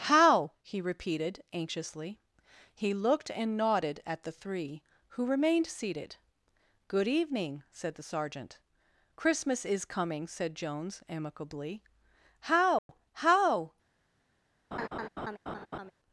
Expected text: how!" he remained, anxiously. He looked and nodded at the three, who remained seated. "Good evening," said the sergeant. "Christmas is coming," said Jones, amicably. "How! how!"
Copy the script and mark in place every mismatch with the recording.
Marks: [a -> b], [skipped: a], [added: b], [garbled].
how!" he [remained, -> repeated] anxiously. He looked and nodded at the three, who remained seated. "Good evening," said the sergeant. "Christmas is coming," said Jones, amicably. "How! how!"